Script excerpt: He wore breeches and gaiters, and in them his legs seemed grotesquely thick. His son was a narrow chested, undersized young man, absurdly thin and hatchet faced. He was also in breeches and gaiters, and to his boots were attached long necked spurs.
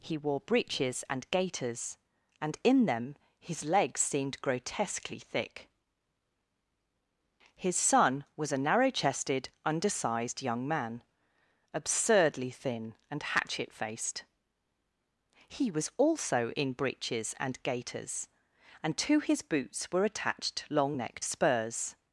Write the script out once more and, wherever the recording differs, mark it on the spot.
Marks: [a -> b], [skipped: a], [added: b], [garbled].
He wore breeches and gaiters, and in them his legs seemed grotesquely thick. His son was a narrow chested, undersized young man, absurdly thin and hatchet faced. He was also in breeches and gaiters, and to his boots were attached long necked spurs.